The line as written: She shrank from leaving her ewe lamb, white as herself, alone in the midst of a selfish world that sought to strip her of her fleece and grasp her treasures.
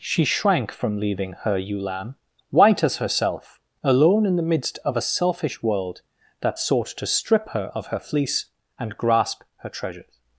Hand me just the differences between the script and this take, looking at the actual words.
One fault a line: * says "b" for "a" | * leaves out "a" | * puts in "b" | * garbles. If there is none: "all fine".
all fine